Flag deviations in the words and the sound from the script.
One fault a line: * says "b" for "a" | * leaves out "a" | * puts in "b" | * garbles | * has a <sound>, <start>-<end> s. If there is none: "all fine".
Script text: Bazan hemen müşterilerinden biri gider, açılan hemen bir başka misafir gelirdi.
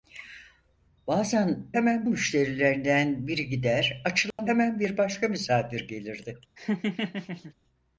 * has a dropout, 4.3-4.4 s
* has a laugh, 6.6-7.5 s